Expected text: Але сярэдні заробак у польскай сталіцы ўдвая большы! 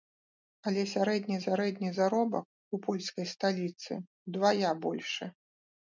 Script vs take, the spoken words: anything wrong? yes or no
yes